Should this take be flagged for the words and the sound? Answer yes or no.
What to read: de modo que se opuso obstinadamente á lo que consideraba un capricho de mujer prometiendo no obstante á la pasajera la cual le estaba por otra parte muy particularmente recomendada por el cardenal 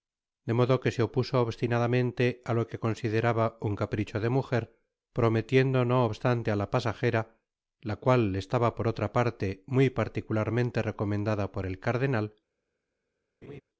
yes